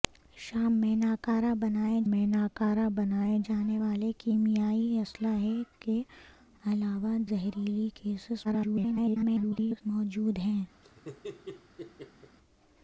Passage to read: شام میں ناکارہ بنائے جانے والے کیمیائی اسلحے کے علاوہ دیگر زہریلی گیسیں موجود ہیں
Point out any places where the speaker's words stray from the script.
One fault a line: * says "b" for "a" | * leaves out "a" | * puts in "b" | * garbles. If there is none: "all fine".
* puts in "میں ناکارہ بنائے"
* leaves out "دیگر"
* garbles